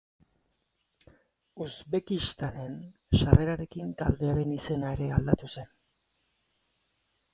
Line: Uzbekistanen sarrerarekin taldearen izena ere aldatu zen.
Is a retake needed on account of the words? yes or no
no